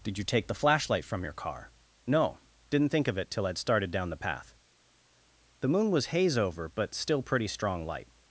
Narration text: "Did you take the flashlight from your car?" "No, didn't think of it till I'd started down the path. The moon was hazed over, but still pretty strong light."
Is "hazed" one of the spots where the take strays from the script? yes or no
yes